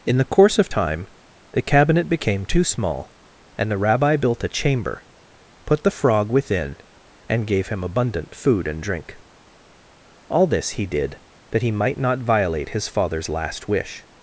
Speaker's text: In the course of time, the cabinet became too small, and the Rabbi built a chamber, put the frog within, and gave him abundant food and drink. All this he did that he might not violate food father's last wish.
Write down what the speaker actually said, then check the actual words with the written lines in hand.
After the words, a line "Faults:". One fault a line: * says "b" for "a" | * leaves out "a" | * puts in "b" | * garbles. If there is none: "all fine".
In the course of time, the cabinet became too small, and the Rabbi built a chamber, put the frog within, and gave him abundant food and drink. All this he did that he might not violate his father's last wish.
Faults:
* says "his" for "food"